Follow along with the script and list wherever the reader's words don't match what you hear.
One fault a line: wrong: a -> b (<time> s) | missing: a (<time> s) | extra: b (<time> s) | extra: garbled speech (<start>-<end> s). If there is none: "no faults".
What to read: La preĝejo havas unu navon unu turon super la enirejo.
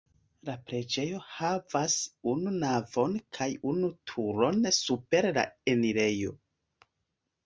extra: kaj (3.4 s)